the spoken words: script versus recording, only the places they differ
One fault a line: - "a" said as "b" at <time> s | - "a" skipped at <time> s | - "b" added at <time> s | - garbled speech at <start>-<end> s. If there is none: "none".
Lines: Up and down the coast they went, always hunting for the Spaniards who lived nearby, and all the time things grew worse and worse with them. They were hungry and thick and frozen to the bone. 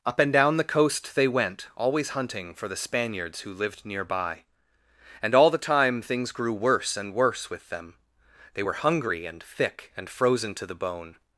none